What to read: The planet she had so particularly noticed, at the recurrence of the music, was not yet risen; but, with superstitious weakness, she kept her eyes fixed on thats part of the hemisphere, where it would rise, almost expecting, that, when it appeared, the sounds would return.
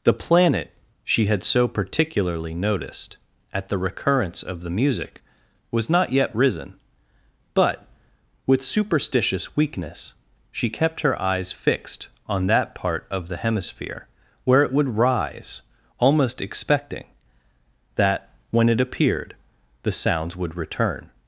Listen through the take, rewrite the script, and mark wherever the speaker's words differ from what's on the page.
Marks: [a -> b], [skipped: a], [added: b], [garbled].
The planet she had so particularly noticed, at the recurrence of the music, was not yet risen; but, with superstitious weakness, she kept her eyes fixed on [thats -> that] part of the hemisphere, where it would rise, almost expecting, that, when it appeared, the sounds would return.